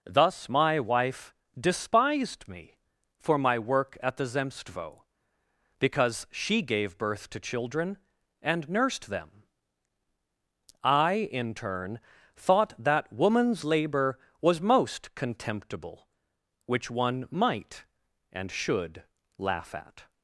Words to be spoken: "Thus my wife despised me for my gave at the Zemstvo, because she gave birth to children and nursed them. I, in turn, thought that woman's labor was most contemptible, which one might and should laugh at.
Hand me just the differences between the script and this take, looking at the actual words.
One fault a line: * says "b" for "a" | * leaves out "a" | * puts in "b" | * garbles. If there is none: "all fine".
* says "work" for "gave"